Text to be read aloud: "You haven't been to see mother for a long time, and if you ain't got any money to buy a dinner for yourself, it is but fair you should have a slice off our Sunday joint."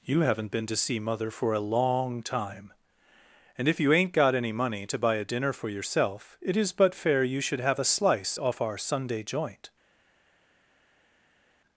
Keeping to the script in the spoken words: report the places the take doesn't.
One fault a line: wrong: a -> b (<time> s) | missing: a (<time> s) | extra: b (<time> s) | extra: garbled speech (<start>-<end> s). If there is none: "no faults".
no faults